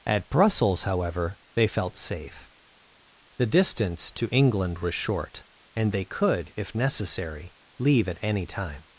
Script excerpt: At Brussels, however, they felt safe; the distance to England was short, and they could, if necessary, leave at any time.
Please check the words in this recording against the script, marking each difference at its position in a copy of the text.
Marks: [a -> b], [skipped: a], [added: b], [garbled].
At Brussels, however, they felt safe; the distance to England was short, and they could, if necessary, leave at any time.